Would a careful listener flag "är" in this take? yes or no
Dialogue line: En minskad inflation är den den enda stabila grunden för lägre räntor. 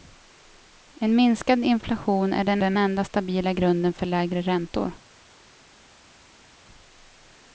no